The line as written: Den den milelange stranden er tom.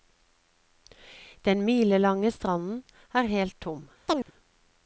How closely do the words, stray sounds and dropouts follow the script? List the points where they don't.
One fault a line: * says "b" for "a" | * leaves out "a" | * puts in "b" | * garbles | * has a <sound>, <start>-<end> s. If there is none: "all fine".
* leaves out "den"
* puts in "helt"
* has a chirp, 4.1-4.3 s